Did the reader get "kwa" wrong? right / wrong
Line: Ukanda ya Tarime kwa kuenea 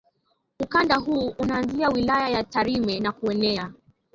wrong